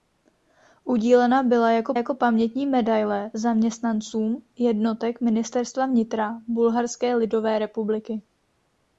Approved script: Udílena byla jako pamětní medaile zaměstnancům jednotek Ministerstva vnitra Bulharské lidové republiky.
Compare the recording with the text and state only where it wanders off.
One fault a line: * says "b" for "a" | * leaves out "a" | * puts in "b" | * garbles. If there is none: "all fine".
* puts in "jako"